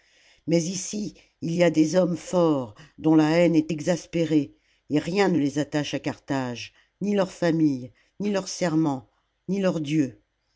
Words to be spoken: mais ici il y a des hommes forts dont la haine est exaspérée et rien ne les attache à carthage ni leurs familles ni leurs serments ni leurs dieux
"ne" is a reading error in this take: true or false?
false